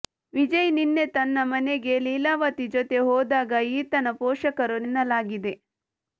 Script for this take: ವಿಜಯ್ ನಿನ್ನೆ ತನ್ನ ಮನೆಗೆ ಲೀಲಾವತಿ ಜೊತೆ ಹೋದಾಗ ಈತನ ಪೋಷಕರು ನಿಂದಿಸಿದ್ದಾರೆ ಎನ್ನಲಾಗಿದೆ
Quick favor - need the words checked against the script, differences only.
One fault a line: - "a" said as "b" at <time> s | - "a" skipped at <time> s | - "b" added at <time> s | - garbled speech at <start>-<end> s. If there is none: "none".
- "ನಿಂದಿಸಿದ್ದಾರೆ" skipped at 4.8 s